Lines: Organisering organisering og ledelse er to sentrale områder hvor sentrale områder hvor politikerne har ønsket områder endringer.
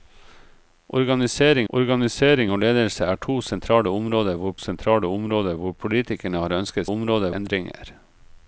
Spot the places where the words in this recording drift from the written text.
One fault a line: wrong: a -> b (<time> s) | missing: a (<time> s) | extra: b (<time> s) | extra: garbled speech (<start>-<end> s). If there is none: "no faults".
no faults